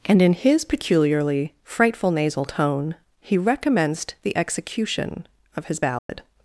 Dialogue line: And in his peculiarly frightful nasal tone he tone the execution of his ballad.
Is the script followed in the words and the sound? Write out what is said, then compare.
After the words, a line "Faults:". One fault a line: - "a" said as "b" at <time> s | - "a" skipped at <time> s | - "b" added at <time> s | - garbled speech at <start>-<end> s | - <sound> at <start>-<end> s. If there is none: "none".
And in his peculiarly frightful nasal tone he recommenced the execution of his ballad.
Faults:
- "tone" said as "recommenced" at 3.4 s
- dropout at 6.0-6.1 s